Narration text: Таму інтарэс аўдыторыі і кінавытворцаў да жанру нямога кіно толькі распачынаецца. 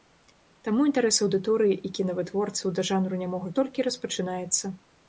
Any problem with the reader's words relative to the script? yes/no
yes